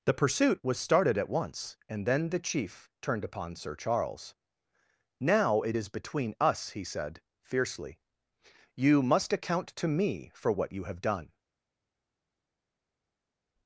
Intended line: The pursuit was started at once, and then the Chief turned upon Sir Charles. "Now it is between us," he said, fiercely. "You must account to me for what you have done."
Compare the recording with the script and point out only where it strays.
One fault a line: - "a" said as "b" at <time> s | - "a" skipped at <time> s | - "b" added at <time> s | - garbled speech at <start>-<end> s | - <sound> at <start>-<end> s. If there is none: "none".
none